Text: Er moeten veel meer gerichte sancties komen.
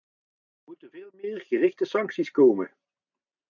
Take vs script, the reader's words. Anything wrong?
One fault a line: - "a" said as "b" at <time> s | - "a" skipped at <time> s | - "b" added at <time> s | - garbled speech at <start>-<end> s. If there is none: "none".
none